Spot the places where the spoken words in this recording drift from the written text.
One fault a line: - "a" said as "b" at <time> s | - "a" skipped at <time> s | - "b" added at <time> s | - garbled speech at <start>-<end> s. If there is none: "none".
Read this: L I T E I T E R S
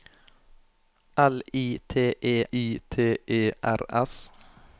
none